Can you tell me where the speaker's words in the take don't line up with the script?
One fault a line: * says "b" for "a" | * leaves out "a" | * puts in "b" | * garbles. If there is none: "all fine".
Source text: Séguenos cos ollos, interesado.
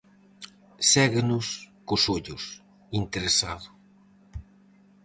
all fine